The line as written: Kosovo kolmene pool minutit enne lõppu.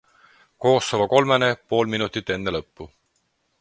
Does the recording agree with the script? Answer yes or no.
yes